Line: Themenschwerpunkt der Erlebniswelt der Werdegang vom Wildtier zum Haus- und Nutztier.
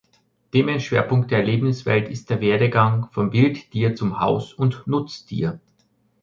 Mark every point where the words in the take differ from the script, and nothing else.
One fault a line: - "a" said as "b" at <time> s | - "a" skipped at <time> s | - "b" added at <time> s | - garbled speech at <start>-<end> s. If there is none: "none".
- "ist" added at 2.1 s